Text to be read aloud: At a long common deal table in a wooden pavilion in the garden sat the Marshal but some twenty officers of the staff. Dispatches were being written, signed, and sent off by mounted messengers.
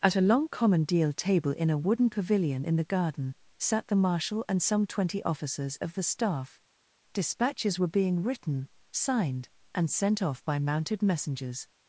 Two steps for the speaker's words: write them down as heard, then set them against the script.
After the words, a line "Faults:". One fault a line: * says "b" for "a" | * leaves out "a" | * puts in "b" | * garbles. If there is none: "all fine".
At a long common deal table in a wooden pavilion in the garden sat the Marshal and some twenty officers of the staff. Dispatches were being written, signed, and sent off by mounted messengers.
Faults:
* says "and" for "but"